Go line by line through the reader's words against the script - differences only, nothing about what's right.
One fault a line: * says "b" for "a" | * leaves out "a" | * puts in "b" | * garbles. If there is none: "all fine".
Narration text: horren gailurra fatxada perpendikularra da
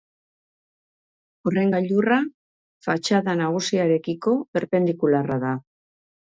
* puts in "nagusiarekiko"